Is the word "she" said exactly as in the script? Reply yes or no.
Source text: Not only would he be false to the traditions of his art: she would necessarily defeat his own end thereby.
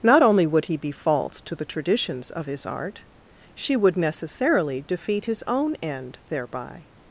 yes